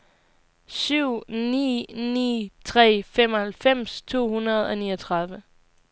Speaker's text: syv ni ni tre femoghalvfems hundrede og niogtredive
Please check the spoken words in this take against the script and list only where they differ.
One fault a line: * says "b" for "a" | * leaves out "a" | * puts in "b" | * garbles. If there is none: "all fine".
* puts in "to"